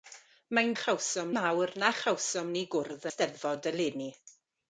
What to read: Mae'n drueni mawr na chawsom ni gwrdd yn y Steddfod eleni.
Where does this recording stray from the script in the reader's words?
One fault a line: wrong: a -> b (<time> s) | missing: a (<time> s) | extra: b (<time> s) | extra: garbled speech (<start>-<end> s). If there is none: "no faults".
wrong: drueni -> chawsom (0.8 s)
missing: yn (3.1 s)